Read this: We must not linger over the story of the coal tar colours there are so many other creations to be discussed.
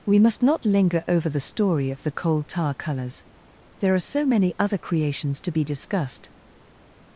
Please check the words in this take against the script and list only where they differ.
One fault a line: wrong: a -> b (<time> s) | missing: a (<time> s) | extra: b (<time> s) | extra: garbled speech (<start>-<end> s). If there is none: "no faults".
no faults